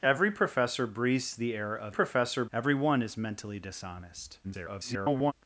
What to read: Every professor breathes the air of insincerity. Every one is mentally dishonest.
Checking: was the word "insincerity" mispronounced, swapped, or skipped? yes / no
yes